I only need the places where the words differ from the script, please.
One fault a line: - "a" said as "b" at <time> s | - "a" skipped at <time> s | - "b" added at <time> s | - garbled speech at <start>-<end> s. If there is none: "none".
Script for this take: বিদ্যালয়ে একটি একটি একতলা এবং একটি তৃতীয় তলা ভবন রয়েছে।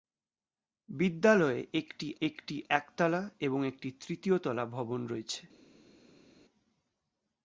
none